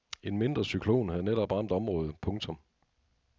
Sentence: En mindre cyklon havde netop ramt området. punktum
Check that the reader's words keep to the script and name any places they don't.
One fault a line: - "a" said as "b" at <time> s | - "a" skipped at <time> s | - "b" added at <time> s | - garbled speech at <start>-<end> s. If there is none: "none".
none